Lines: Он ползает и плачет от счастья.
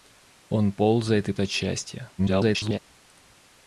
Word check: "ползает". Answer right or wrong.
right